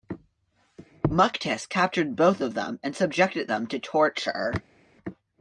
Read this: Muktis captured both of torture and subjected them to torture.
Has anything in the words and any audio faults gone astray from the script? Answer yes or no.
yes